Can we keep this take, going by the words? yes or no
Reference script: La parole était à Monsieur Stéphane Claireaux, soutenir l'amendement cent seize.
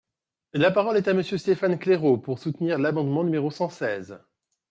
no